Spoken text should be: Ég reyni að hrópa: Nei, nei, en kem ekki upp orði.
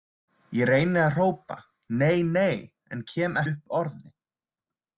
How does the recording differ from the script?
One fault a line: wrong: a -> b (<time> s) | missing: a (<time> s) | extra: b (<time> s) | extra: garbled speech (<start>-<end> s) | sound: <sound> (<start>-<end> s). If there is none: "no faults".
missing: ekki (3.4 s)